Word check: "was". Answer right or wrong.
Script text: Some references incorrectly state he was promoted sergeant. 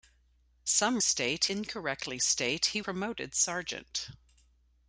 wrong